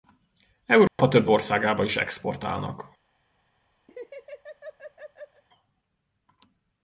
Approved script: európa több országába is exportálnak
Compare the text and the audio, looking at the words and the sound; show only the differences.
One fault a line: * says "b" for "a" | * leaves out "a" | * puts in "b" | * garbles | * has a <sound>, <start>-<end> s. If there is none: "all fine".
* has a dropout, 0.9-1.0 s
* has a laugh, 3.9-5.4 s